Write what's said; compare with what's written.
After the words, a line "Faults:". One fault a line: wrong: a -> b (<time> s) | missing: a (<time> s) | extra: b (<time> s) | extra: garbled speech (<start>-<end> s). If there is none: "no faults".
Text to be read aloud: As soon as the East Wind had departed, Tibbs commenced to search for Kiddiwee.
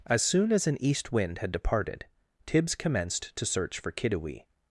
As soon as an East Wind had departed, Tibbs commenced to search for Kiddiwee.
Faults:
wrong: the -> an (0.7 s)